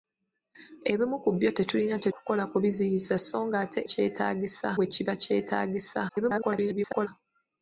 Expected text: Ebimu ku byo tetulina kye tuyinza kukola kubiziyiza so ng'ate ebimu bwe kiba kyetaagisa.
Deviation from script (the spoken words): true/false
true